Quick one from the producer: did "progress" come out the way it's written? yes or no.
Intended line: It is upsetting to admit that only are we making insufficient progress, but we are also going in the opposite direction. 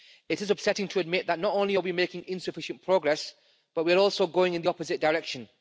yes